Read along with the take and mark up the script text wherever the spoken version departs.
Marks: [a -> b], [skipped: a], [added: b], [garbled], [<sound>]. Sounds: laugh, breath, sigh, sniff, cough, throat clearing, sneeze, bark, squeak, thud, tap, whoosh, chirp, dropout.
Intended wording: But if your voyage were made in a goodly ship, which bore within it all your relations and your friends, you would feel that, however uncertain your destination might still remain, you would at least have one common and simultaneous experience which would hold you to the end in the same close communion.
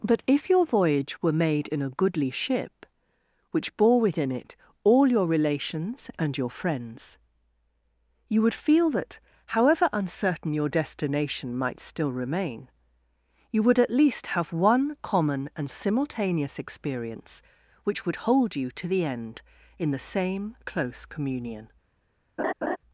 But if your voyage were made in a goodly ship, which bore within it all your relations and your friends, you would feel that, however uncertain your destination might still remain, you would at least have one common and simultaneous experience which would hold you to the end in the same close communion. [laugh]